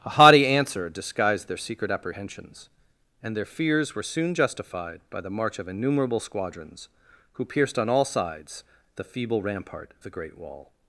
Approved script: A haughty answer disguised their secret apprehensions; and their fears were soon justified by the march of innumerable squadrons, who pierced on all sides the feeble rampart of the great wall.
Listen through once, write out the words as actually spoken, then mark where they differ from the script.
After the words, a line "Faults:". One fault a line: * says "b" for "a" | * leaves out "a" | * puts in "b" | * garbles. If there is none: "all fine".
A haughty answer disguised their secret apprehensions; and their fears were soon justified by the march of innumerable squadrons, who pierced on all sides the feeble rampart the great wall.
Faults:
* leaves out "of"